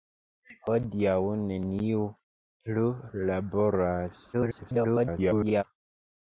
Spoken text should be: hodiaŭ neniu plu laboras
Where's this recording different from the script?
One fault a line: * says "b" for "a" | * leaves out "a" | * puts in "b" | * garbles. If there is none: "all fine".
* garbles